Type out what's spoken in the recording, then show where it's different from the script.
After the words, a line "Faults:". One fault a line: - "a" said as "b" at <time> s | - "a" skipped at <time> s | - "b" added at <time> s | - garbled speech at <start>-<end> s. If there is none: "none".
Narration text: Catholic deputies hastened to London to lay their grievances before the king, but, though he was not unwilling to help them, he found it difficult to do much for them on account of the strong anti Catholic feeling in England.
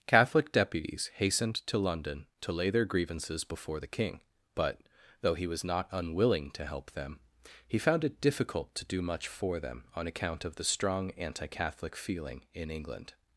Catholic deputies hastened to London to lay their grievances before the king, but, though he was not unwilling to help them, he found it difficult to do much for them on account of the strong anti Catholic feeling in England.
Faults:
none